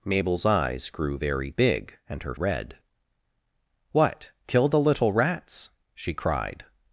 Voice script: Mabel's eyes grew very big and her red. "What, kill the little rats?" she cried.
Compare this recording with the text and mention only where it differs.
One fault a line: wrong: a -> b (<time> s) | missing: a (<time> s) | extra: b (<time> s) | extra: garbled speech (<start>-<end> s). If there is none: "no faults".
no faults